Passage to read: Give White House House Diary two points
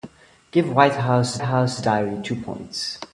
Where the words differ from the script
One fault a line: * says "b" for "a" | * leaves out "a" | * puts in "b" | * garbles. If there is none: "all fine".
all fine